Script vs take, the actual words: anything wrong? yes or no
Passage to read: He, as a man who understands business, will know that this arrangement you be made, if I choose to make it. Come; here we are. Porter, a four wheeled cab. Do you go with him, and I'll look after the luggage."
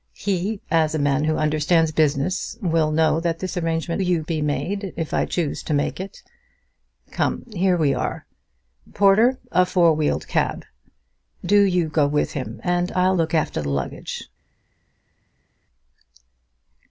no